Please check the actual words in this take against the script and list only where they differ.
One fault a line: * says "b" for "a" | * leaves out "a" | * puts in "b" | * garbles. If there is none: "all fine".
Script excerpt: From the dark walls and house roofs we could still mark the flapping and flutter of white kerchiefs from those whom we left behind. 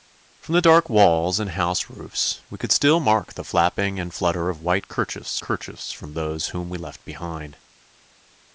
* puts in "kerchiefs"